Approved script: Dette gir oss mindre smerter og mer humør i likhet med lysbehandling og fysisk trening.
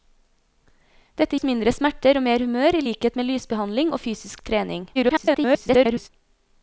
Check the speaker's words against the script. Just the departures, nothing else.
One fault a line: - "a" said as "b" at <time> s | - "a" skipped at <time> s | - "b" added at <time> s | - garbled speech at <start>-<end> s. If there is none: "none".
- "gir" skipped at 1.4 s
- garbled speech at 4.9-6.1 s